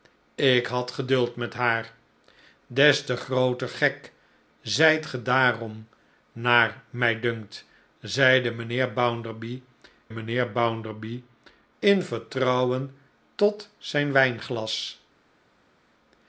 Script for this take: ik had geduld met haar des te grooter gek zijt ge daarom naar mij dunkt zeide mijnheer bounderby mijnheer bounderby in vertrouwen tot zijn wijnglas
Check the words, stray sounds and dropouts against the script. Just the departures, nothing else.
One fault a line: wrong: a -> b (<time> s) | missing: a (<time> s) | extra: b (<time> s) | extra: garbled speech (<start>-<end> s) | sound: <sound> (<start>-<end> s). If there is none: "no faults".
no faults